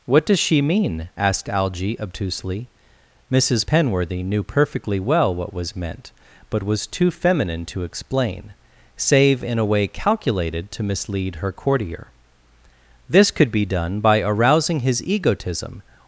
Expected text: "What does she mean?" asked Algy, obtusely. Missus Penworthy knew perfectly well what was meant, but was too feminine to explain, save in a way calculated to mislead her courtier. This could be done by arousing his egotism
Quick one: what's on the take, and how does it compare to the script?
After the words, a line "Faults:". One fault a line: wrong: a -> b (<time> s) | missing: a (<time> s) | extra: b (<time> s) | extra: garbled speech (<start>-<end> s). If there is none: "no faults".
"What does she mean?" asked Algy, obtusely. Missus Penworthy knew perfectly well what was meant, but was too feminine to explain, save in a way calculated to mislead her courtier. This could be done by arousing his egotism
Faults:
no faults